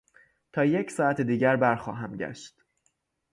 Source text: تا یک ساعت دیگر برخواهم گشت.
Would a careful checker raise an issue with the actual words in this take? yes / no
no